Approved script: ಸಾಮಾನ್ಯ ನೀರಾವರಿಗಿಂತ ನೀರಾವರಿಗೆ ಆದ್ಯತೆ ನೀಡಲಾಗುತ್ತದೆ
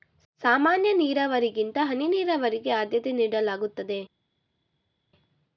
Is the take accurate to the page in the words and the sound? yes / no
no